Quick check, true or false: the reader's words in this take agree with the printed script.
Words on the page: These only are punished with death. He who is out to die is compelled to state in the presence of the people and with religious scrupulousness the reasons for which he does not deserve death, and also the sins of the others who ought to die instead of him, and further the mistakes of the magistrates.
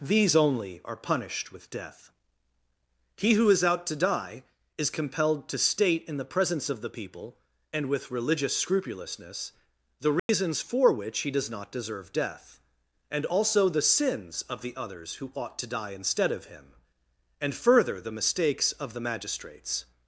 true